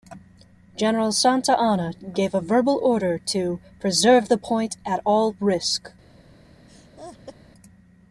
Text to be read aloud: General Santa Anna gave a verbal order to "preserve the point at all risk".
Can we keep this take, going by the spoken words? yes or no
yes